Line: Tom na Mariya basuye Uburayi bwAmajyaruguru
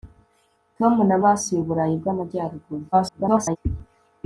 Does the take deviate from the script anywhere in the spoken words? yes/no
yes